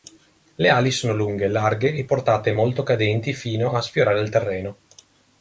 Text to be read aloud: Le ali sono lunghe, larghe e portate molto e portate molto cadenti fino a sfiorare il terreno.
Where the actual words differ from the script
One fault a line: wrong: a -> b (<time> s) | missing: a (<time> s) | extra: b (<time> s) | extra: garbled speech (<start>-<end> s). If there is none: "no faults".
missing: e portate molto (2.8 s)